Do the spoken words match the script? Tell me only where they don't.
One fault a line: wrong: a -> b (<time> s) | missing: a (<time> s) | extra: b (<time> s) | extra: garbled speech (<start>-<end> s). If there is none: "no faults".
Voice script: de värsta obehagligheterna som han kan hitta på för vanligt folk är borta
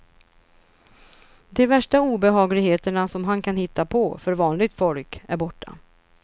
no faults